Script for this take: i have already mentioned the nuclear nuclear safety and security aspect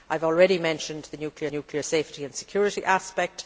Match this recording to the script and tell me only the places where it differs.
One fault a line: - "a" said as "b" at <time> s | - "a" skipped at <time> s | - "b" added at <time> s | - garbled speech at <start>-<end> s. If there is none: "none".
none